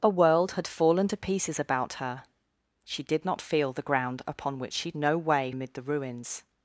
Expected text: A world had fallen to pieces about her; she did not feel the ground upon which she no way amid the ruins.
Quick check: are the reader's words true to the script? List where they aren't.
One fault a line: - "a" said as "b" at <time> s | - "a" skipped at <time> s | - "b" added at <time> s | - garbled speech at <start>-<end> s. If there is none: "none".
none